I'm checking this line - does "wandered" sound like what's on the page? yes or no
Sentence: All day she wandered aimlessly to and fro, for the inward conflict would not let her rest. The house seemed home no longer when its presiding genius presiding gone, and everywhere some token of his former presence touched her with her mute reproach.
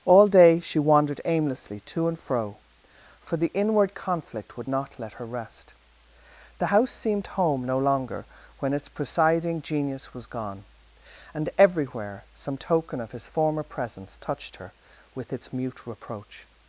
yes